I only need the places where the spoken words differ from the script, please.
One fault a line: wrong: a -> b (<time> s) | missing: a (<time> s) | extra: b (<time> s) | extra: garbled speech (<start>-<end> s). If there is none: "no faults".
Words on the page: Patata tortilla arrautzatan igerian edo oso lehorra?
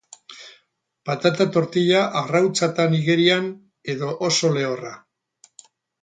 no faults